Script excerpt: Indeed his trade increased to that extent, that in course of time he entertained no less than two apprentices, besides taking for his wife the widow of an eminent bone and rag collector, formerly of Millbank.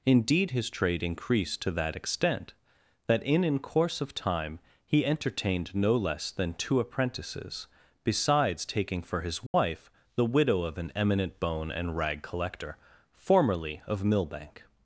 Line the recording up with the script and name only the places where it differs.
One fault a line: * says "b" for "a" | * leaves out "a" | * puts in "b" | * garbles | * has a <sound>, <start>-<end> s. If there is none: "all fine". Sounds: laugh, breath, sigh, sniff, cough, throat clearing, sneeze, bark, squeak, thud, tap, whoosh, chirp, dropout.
* puts in "in"
* has a dropout, 9.5-9.5 s